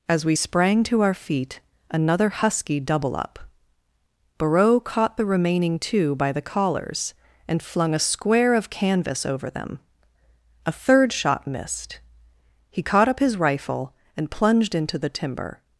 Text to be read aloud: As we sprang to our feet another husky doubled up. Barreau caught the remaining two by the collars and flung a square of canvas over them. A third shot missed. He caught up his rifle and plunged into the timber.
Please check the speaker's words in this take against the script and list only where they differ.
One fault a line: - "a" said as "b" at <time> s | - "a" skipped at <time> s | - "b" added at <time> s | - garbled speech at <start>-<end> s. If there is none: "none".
- "doubled" said as "double" at 2.8 s